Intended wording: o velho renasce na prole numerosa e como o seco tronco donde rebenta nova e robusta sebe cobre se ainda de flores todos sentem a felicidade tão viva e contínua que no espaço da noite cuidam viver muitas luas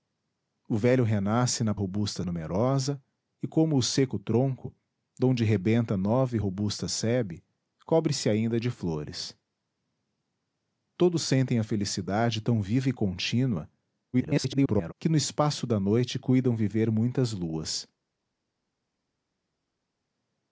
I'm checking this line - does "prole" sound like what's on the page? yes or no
no